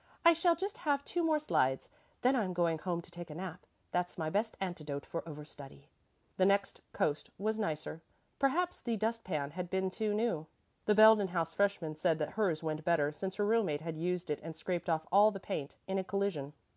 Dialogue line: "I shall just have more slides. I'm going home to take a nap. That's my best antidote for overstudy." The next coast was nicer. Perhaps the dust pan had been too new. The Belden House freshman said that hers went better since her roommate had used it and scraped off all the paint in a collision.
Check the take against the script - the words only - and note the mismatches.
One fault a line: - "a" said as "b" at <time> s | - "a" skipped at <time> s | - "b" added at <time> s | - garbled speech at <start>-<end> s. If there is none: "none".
- "two" added at 1.1 s
- "Then" added at 2.2 s